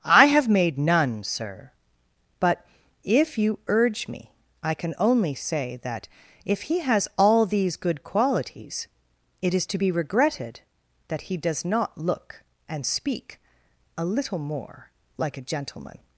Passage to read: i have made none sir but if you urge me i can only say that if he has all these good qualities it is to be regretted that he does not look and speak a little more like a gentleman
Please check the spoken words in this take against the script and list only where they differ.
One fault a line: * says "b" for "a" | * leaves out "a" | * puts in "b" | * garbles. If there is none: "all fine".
all fine